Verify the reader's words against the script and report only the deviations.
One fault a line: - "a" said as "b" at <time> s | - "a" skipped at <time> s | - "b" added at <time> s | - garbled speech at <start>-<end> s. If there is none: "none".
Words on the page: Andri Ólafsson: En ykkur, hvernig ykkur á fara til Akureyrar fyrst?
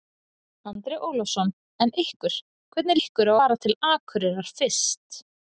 none